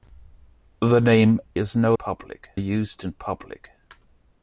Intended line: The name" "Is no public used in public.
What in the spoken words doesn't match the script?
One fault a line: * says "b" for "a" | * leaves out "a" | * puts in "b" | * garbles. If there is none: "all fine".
all fine